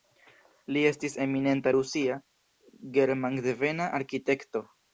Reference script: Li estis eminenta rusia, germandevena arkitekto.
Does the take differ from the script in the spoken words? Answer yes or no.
no